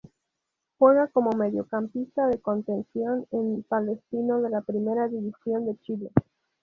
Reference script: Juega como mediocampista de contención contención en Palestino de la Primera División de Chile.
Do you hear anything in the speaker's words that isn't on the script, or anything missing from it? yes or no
yes